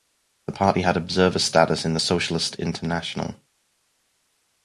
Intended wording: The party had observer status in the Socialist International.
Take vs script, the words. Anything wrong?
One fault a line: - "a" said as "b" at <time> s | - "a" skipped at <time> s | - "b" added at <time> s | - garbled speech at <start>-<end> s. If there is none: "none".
none